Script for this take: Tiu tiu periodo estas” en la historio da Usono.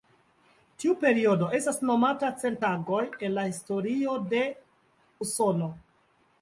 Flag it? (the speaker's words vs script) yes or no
yes